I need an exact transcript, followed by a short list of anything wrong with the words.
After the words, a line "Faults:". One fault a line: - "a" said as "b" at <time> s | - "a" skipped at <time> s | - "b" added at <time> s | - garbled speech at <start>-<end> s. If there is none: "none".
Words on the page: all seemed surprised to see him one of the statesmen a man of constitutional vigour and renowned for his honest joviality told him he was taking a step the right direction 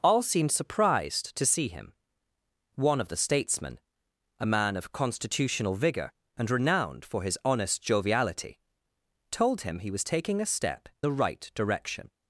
all seemed surprised to see him one of the statesmen a man of constitutional vigour and renowned for his honest joviality told him he was taking a step the right direction
Faults:
none